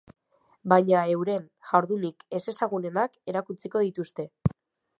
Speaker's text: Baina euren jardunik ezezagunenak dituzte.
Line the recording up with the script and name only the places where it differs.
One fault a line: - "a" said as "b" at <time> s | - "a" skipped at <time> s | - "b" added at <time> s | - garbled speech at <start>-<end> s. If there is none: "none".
- "erakutsiko" added at 3.4 s